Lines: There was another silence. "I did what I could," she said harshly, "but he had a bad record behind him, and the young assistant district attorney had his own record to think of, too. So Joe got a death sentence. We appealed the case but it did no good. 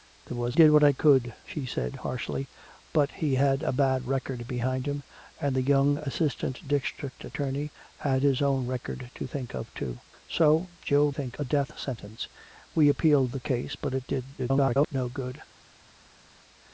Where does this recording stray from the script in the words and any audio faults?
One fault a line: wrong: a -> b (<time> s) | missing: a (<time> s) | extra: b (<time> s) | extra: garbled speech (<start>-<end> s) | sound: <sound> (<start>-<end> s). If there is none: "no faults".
missing: another silence I (0.6 s)
wrong: got -> think (11.1 s)
extra: garbled speech (14.4-14.9 s)